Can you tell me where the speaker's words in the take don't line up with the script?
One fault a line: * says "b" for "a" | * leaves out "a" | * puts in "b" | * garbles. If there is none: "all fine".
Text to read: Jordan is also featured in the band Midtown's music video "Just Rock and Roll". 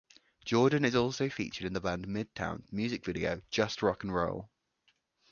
all fine